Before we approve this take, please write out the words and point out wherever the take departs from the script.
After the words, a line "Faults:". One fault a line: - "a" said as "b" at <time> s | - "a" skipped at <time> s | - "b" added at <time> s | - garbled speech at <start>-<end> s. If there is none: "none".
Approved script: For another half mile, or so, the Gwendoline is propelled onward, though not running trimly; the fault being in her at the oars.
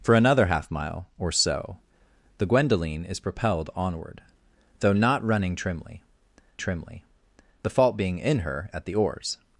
For another half mile, or so, the Gwendoline is propelled onward, though not running trimly trimly; the fault being in her at the oars.
Faults:
- "trimly" added at 6.6 s